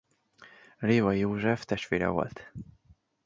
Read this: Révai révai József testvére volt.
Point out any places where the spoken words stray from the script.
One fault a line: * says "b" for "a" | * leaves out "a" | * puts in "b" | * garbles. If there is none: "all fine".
* leaves out "révai"